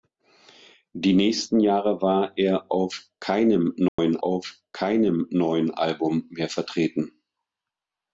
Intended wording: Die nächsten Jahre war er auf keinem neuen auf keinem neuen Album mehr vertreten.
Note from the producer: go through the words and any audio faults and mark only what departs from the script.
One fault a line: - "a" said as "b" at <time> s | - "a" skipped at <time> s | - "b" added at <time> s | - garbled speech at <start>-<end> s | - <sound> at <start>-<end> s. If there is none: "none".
- dropout at 3.9-4.0 s